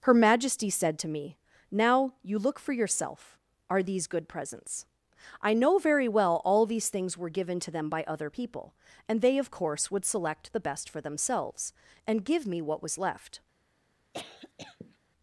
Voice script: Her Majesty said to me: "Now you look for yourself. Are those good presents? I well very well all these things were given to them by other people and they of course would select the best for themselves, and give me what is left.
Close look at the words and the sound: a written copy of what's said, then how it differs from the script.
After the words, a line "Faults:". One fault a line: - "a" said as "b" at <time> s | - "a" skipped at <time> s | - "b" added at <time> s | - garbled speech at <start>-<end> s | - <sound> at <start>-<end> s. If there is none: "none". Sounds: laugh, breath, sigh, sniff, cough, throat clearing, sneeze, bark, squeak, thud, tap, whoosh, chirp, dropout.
Her Majesty said to me: "Now you look for yourself. Are these good presents? I know very well all these things were given to them by other people and they of course would select the best for themselves, and give me what was left.
Faults:
- "those" said as "these" at 3.8 s
- "well" said as "know" at 5.5 s
- "is" said as "was" at 12.8 s
- cough at 14.1-15.0 s